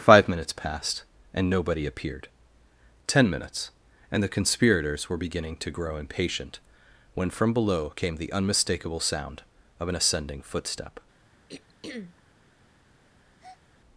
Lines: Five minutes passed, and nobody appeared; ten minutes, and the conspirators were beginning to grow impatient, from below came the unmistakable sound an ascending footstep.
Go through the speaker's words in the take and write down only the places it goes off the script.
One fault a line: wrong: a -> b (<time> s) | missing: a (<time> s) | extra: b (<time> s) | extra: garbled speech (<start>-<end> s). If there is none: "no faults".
extra: when (7.2 s)
extra: of (9.8 s)